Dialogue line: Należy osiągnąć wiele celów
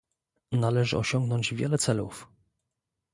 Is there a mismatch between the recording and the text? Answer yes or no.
no